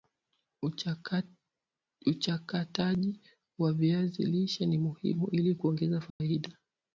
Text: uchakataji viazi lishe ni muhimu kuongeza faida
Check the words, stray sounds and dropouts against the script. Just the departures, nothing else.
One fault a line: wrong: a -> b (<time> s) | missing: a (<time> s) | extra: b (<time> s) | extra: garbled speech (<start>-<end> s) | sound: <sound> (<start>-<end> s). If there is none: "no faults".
extra: wa (3.6 s)
extra: ili (5.3 s)
sound: dropout (6.1-6.2 s)